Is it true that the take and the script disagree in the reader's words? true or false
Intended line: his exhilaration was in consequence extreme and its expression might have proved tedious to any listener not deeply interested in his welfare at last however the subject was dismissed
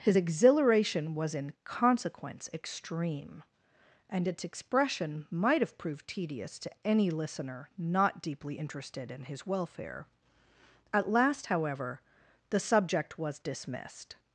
false